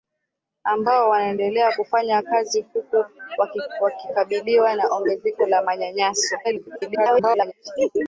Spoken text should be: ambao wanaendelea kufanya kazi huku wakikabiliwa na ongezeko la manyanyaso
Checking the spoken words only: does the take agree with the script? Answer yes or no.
no